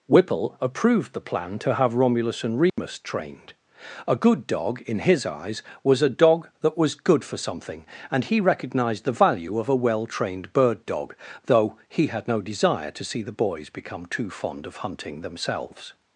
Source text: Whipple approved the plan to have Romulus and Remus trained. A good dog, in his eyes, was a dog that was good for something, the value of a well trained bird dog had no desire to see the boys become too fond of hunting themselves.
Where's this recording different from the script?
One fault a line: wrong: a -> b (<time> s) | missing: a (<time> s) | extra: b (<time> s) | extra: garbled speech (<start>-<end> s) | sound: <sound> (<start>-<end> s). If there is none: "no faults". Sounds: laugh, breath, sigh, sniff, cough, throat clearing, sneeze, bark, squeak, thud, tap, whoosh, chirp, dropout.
sound: dropout (2.7-2.8 s)
extra: and he recognized (8.1 s)
extra: though he (11.4 s)